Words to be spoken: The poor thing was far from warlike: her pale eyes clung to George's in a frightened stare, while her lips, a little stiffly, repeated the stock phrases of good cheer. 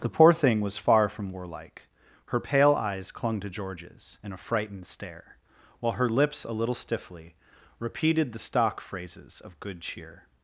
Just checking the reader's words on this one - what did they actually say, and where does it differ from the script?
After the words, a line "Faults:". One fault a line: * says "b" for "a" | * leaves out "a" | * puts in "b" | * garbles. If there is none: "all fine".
The poor thing was far from warlike: her pale eyes clung to George's in a frightened stare, while her lips, a little stiffly, repeated the stock phrases of good cheer.
Faults:
all fine